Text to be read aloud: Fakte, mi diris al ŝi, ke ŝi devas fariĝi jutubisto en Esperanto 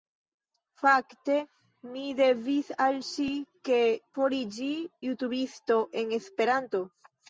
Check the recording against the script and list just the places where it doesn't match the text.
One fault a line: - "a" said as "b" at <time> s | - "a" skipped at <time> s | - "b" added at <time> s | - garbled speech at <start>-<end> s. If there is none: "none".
- "ŝi devas" skipped at 3.8 s